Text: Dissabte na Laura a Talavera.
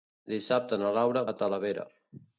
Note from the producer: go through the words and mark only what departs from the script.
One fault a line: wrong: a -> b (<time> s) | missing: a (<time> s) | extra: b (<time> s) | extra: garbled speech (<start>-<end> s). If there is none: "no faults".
no faults